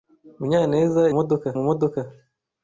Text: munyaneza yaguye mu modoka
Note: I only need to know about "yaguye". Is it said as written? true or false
false